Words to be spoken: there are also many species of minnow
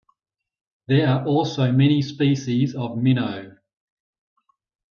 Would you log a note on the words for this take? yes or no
no